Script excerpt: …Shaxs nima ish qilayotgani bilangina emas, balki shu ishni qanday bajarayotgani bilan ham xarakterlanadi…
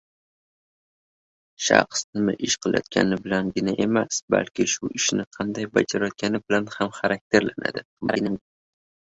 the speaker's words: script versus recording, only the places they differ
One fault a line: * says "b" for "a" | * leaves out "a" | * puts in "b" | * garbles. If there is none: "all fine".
* garbles